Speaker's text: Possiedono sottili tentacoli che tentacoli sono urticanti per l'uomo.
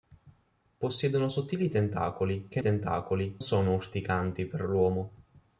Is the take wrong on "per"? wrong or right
right